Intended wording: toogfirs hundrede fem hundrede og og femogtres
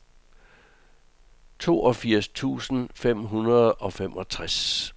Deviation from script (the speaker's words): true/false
true